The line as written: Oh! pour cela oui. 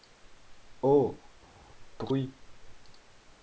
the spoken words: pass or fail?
fail